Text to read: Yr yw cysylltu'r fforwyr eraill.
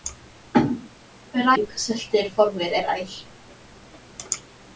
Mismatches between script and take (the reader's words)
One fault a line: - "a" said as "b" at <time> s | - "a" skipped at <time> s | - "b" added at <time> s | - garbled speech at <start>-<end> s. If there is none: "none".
none